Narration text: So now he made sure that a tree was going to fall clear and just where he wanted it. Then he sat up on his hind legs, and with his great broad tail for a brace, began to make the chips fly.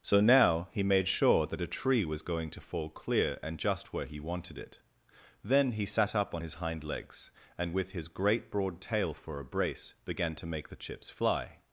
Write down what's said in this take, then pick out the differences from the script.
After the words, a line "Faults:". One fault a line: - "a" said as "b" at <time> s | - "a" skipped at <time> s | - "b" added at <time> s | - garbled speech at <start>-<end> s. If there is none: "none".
So now he made sure that a tree was going to fall clear and just where he wanted it. Then he sat up on his hind legs, and with his great broad tail for a brace, began to make the chips fly.
Faults:
none